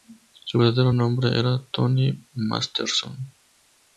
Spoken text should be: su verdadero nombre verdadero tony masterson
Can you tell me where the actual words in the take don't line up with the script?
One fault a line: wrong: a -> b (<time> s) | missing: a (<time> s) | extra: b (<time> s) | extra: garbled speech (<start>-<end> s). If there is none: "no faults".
wrong: verdadero -> era (1.4 s)